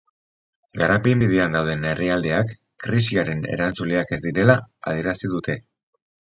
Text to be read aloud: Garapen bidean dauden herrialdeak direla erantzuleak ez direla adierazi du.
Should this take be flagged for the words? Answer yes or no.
yes